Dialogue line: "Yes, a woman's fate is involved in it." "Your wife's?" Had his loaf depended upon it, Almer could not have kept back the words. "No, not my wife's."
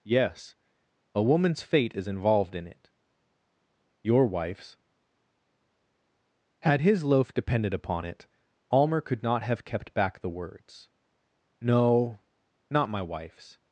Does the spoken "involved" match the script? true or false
true